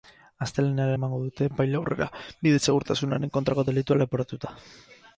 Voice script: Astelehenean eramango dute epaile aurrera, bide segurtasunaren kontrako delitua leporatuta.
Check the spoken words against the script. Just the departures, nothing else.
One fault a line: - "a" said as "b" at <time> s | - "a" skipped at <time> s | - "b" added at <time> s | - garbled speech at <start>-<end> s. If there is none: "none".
none